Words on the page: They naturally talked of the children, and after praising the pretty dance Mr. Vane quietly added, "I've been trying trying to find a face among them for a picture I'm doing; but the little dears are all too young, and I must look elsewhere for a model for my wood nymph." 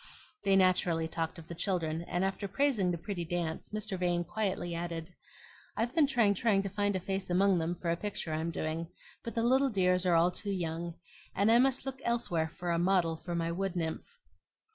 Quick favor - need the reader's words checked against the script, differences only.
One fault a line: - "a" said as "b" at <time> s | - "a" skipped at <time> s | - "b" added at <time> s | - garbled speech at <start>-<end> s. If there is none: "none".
none